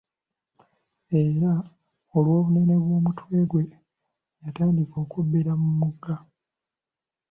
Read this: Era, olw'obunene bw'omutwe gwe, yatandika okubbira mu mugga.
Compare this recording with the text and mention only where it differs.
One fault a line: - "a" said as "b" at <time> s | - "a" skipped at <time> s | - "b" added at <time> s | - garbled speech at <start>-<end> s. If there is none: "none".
none